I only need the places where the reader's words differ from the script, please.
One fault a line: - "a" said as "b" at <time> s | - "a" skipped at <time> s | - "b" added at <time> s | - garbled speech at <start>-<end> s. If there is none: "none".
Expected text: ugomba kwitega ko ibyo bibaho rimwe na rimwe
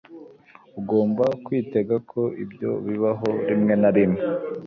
none